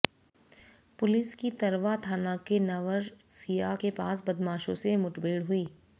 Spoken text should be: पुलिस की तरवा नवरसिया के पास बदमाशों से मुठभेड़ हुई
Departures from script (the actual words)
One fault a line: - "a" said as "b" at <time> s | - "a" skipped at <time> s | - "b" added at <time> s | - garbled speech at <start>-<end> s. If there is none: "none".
- "थाना के" added at 2.0 s